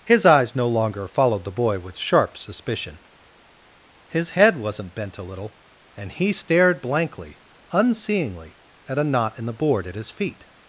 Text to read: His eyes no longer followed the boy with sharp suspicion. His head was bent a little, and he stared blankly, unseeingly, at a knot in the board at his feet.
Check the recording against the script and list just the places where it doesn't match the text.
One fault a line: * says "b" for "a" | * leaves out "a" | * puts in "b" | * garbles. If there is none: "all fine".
* says "wasn't" for "was"